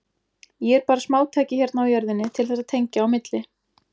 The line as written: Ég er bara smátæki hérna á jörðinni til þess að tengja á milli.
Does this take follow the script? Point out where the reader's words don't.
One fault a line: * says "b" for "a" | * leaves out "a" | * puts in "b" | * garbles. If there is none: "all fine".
all fine